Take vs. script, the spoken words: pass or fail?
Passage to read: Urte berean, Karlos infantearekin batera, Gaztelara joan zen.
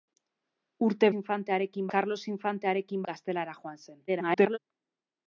fail